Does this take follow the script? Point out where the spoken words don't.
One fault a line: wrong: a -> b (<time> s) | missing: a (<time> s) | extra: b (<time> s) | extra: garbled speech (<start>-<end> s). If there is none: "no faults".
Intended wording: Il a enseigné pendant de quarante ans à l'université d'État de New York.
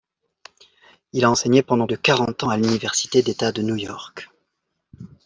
no faults